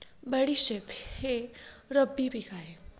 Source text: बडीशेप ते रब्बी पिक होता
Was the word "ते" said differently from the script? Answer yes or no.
yes